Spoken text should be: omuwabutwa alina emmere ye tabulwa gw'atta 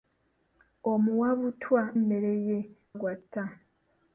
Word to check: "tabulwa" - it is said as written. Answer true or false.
false